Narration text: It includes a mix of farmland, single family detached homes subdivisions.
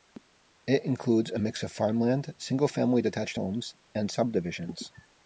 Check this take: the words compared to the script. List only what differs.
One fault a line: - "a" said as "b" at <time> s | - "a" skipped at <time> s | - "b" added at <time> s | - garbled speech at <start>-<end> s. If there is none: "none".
- "and" added at 3.9 s